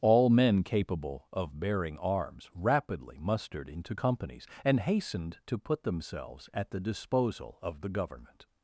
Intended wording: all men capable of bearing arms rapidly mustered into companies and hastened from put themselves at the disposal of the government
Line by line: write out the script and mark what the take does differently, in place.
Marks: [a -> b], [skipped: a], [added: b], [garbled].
all men capable of bearing arms rapidly mustered into companies and hastened [from -> to] put themselves at the disposal of the government